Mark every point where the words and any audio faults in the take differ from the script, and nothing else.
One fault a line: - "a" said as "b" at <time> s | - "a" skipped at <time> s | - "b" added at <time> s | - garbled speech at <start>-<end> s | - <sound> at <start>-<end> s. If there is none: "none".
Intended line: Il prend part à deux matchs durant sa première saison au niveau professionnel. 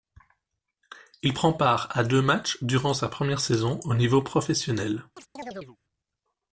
- chirp at 5.2-5.8 s